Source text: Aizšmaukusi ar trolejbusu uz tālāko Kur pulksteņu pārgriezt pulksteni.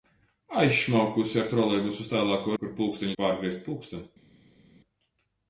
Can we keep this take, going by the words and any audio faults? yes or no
yes